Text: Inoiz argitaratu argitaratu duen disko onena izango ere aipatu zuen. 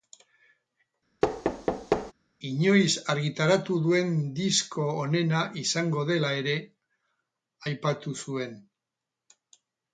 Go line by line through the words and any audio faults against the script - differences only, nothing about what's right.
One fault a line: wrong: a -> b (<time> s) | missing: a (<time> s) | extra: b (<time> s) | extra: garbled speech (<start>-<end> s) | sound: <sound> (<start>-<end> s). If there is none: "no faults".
sound: thud (1.2-2.1 s)
missing: argitaratu (3.8 s)
extra: dela (6.1 s)